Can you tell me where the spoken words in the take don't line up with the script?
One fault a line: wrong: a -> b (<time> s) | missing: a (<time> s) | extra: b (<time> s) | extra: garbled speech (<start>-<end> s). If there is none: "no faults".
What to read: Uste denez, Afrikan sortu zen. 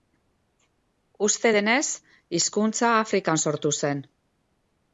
extra: hizkuntza (2.4 s)